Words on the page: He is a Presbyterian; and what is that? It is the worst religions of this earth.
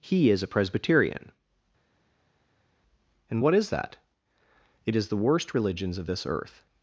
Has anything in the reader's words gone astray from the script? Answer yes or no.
no